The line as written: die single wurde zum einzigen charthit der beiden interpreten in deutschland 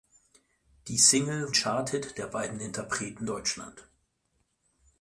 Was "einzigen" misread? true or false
true